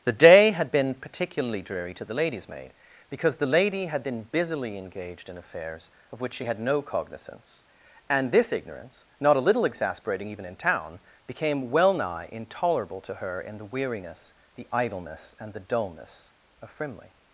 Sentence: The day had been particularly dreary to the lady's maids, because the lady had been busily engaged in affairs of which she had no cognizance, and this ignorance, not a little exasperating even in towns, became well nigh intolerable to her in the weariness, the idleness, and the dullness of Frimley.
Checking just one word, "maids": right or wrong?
wrong